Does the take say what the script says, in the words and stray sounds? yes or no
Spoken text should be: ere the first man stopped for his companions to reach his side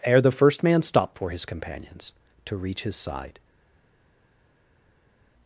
yes